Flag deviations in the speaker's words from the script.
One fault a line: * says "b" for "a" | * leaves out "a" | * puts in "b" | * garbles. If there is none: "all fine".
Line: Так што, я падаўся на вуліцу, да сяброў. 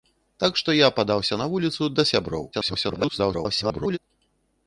* garbles